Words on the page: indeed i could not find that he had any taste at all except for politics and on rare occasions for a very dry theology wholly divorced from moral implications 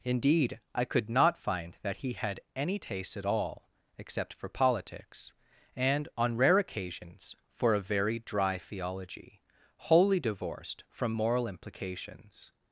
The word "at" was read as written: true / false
true